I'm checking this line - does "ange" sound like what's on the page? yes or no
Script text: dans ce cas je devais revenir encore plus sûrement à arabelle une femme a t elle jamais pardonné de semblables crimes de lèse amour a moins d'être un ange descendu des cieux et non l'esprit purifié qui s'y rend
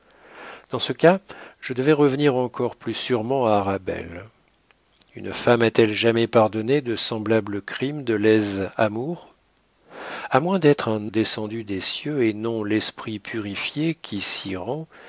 no